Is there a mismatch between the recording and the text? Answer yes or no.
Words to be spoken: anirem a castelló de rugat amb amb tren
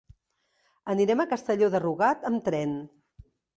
yes